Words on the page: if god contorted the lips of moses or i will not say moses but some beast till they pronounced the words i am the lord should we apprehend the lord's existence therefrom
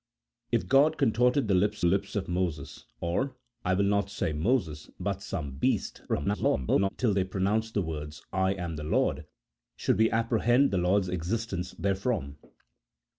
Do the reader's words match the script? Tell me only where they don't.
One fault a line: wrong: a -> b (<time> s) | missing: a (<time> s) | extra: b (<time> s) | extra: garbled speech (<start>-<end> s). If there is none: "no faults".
extra: lips (1.8 s)
extra: garbled speech (6.1-6.9 s)